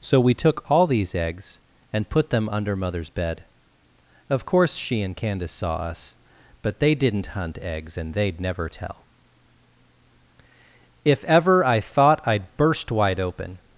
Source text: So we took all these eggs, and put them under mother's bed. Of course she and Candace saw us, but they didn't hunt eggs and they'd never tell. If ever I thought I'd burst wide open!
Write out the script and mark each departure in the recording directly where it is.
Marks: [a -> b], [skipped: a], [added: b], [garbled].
So we took all these eggs, and put them under mother's bed. Of course she and Candace saw us, but they didn't hunt eggs and they'd never tell. If ever I thought I'd burst wide open!